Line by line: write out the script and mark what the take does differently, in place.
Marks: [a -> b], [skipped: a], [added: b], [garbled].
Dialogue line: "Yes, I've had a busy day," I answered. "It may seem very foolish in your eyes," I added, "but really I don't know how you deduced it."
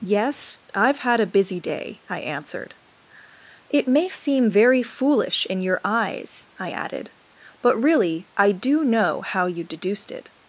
"Yes, I've had a busy day," I answered. "It may seem very foolish in your eyes," I added, "but really I [don't -> do] know how you deduced it."